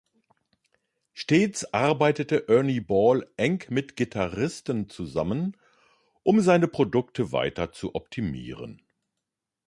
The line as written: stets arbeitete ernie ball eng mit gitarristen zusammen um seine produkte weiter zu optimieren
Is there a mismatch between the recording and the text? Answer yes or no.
no